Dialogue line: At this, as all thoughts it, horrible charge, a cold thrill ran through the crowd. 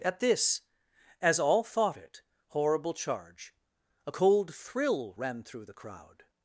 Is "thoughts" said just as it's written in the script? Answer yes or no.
no